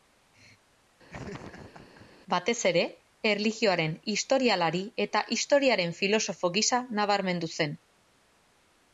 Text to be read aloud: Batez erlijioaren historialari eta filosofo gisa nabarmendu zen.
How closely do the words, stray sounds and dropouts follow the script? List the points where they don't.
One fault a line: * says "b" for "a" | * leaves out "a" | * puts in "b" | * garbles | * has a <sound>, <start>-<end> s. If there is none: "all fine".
* has a laugh, 1.1-2.1 s
* puts in "ere"
* puts in "historiaren"